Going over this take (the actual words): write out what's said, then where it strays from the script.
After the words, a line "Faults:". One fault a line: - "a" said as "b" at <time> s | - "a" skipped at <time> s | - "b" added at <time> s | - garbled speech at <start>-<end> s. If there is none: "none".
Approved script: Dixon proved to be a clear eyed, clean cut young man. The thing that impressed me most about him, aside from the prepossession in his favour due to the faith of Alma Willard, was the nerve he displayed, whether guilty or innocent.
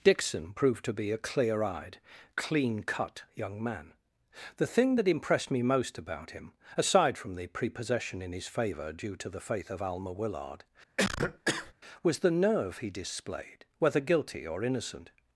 Dixon proved to be a clear eyed, clean cut young man. The thing that impressed me most about him, aside from the prepossession in his favour due to the faith of Alma Willard, was the nerve he displayed, whether guilty or innocent.
Faults:
none